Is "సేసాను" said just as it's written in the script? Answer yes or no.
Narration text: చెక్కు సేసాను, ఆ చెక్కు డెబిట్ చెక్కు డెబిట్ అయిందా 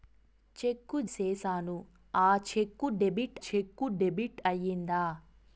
yes